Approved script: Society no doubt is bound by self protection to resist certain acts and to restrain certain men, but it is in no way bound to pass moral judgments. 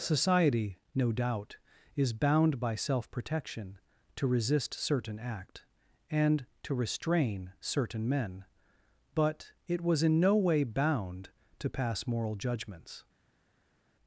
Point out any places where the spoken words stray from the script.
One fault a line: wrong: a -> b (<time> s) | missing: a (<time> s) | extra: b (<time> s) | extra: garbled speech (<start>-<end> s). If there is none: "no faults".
wrong: acts -> act (5.2 s)
wrong: is -> was (9.8 s)